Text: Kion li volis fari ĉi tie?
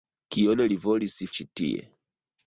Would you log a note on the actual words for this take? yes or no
yes